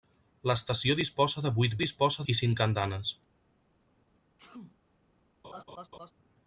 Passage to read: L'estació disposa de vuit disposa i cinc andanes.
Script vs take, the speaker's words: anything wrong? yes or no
no